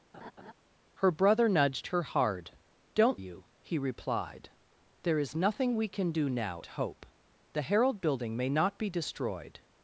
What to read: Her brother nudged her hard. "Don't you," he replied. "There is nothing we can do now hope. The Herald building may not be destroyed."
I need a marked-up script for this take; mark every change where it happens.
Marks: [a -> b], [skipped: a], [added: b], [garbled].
Her brother nudged her hard. "Don't you," he replied. "There is nothing we can do now hope. The Herald building may not be destroyed."